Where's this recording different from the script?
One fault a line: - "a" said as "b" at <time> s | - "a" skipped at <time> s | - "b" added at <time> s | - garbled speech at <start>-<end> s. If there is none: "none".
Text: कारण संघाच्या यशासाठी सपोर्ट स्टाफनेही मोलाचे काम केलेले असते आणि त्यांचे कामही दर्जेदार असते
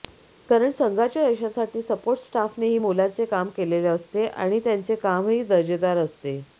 none